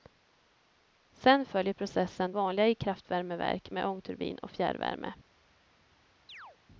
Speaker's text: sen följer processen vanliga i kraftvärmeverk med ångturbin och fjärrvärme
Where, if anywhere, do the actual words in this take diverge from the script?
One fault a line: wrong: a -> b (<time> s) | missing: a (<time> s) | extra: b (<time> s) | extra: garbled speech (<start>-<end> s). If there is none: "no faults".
no faults